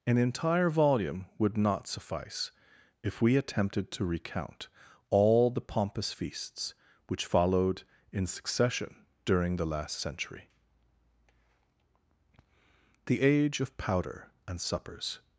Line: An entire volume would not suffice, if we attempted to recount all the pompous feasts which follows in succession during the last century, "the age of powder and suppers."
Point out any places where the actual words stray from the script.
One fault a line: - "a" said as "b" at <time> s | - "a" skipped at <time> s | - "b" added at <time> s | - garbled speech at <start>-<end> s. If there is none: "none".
- "follows" said as "followed" at 7.2 s